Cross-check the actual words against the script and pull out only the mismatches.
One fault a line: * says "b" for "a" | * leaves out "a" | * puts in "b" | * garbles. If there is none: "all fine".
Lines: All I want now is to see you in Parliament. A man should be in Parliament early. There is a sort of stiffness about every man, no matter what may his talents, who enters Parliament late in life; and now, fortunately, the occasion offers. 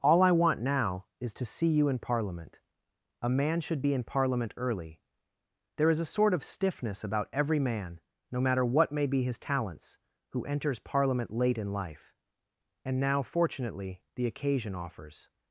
* puts in "be"